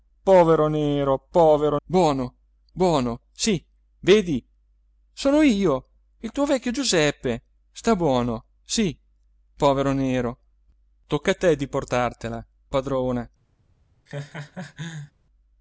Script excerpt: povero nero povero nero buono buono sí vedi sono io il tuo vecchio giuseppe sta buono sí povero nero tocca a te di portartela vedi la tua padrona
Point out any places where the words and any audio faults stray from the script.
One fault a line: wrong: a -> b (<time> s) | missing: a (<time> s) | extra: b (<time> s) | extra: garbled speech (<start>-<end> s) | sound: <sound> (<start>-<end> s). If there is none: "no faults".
missing: nero (1.8 s)
missing: vedi la tua (12.5 s)
sound: laugh (14.1-15.1 s)